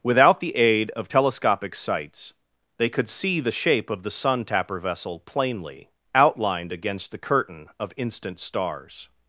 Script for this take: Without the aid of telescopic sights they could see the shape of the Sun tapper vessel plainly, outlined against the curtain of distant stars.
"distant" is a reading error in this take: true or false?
true